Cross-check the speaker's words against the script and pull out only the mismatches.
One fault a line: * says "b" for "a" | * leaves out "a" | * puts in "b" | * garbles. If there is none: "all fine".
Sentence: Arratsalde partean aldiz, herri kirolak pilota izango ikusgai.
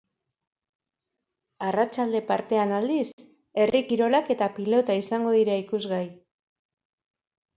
* puts in "eta"
* puts in "dira"